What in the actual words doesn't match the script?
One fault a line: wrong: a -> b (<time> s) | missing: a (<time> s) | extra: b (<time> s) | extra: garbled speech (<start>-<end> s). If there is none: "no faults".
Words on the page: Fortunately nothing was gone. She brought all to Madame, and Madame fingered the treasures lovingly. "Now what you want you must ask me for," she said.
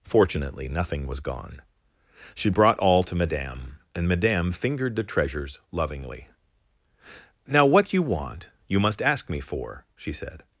no faults